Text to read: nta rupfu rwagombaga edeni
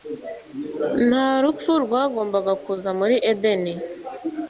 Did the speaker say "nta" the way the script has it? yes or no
yes